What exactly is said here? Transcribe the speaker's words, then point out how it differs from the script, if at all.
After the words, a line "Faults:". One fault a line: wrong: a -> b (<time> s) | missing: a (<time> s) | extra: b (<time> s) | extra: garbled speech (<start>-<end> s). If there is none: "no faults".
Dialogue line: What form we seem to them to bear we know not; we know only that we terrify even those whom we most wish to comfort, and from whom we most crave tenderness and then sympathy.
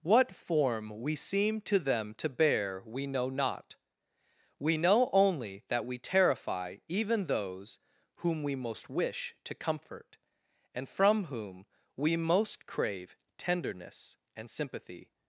What form we seem to them to bear we know not; we know only that we terrify even those whom we most wish to comfort, and from whom we most crave tenderness and sympathy.
Faults:
missing: then (14.5 s)